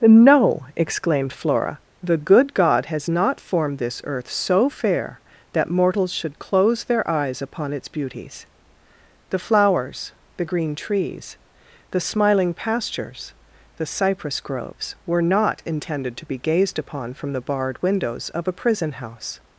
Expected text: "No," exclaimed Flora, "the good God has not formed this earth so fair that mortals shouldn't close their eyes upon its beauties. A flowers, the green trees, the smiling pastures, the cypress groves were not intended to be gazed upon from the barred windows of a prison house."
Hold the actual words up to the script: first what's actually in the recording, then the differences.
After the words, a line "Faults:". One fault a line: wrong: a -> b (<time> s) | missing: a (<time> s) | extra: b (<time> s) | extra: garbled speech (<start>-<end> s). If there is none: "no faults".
"No," exclaimed Flora, "the good God has not formed this earth so fair that mortals should close their eyes upon its beauties. The flowers, the green trees, the smiling pastures, the cypress groves were not intended to be gazed upon from the barred windows of a prison house."
Faults:
wrong: shouldn't -> should (6.1 s)
wrong: A -> The (9.3 s)